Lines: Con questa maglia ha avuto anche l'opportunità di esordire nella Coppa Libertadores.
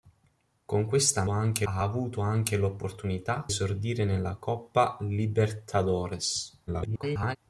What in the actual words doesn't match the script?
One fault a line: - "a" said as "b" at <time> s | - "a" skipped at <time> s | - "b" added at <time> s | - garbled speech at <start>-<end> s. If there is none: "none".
- "maglia" said as "anche" at 1.3 s
- "di" skipped at 3.5 s
- garbled speech at 6.7-7.4 s